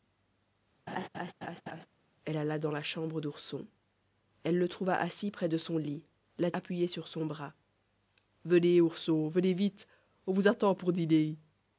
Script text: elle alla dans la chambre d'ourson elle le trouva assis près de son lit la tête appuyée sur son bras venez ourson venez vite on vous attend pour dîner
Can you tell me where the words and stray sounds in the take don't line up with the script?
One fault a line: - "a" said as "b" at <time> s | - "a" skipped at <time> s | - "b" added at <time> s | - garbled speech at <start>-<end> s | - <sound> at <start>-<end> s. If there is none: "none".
- laugh at 0.9-1.9 s
- "tête" skipped at 6.5 s